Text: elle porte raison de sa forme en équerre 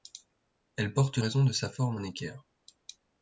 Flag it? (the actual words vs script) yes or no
no